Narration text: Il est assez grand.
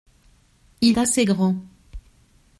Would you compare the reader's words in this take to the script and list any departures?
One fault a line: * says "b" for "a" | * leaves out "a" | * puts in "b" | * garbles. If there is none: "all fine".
* leaves out "est"